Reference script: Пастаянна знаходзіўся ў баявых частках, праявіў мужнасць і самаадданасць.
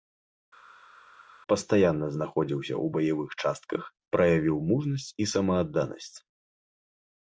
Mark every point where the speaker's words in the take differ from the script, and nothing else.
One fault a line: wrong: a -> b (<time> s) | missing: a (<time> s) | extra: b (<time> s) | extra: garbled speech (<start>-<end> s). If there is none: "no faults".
no faults